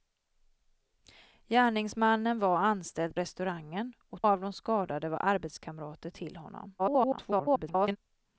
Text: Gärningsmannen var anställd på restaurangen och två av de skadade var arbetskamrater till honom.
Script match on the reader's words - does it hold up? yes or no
no